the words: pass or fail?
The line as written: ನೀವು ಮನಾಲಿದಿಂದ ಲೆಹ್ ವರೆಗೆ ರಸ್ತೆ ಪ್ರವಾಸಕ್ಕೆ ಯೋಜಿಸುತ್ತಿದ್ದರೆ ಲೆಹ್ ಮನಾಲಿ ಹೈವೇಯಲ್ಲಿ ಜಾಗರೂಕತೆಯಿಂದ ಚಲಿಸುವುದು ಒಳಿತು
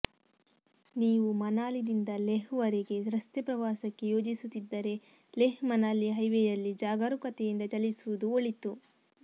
pass